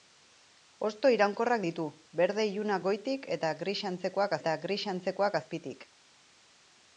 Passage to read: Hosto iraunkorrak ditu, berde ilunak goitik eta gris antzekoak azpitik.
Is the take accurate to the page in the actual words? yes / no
no